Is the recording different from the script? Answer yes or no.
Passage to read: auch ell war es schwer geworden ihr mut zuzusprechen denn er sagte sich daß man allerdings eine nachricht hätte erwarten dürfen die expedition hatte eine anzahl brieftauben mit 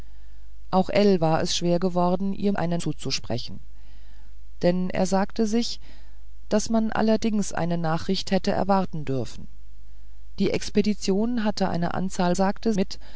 yes